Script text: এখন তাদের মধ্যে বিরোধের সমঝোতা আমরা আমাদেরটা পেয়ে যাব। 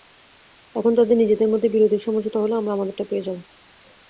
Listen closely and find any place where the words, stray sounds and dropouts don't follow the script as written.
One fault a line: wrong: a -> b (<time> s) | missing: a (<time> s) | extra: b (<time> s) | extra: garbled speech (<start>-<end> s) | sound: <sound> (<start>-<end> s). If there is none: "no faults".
extra: নিজেদের (1.2 s)
extra: হলে (2.4 s)